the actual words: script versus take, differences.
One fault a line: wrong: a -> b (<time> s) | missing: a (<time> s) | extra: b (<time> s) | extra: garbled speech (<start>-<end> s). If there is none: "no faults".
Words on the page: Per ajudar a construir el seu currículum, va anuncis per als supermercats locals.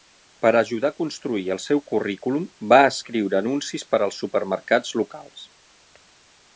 extra: escriure (2.9 s)